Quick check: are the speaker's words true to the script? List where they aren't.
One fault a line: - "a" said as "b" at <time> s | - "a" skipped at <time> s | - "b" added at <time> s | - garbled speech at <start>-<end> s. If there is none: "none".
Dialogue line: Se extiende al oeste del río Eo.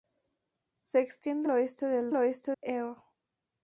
- "al" skipped at 1.5 s
- "río" said as "oeste" at 2.1 s